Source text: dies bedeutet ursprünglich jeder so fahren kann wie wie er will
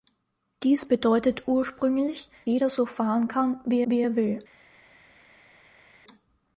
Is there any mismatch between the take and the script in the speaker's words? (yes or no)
no